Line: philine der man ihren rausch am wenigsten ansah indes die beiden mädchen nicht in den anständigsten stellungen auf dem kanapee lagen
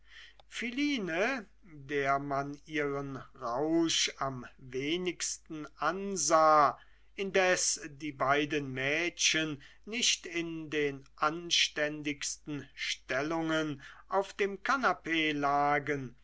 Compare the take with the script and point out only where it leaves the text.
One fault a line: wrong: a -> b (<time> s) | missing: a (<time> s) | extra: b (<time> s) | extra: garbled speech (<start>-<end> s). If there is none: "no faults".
no faults